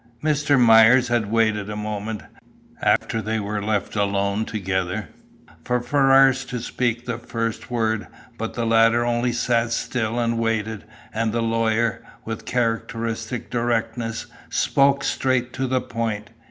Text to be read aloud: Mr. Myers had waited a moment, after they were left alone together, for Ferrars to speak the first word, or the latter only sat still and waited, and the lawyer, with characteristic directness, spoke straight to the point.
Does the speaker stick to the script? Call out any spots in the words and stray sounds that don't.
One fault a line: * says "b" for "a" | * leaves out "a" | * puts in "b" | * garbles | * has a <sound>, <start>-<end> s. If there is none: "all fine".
* has a dropout, 3.0-3.0 s
* says "but" for "or"